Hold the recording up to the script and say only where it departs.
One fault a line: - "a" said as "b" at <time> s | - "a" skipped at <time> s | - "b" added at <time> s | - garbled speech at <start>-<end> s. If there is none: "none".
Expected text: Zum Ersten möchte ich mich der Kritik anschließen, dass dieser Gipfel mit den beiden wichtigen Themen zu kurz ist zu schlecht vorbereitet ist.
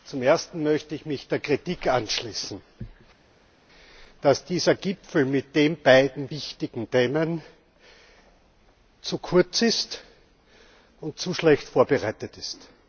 - "und" added at 11.0 s